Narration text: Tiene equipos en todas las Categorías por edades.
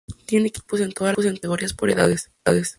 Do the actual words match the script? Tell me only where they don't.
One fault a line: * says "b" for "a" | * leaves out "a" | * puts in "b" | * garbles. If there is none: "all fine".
all fine